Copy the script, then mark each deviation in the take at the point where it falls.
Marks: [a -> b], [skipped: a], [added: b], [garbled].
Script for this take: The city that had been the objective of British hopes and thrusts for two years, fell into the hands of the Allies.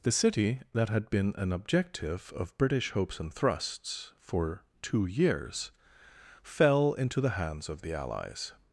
The city that had been [the -> an] objective of British hopes and thrusts for two years, fell into the hands of the Allies.